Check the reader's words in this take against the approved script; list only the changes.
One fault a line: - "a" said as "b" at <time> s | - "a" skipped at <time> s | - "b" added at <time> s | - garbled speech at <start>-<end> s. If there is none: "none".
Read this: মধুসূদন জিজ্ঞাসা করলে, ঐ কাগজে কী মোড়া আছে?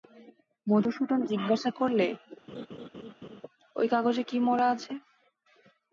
none